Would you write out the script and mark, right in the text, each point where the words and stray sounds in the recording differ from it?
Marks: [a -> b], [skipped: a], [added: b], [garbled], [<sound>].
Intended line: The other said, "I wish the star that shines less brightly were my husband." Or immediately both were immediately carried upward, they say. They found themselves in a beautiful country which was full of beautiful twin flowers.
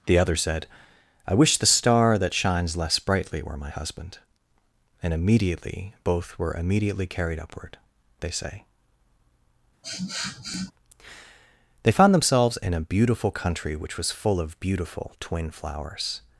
The other said, "I wish the star that shines less brightly were my husband." [Or -> And] immediately both were immediately carried upward, they say. [sniff] They found themselves in a beautiful country which was full of beautiful twin flowers.